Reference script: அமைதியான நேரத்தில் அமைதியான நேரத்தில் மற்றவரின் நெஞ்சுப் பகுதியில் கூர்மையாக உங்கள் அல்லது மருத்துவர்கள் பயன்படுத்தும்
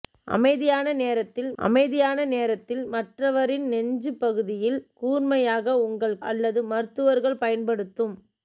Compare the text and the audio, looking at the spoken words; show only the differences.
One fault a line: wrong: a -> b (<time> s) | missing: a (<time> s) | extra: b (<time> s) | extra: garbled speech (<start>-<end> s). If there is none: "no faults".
no faults